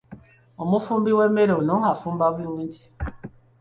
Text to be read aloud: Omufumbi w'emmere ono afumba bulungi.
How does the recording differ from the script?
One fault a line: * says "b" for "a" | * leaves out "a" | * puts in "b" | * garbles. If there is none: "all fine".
all fine